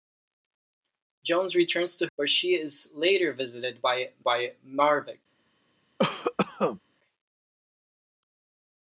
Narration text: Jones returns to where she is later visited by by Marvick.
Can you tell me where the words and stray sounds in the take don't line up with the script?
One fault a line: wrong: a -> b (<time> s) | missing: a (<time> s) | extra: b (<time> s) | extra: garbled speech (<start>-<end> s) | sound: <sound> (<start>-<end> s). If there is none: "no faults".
sound: cough (6.0-6.8 s)